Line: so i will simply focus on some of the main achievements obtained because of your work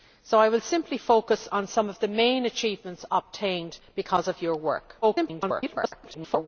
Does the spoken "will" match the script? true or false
true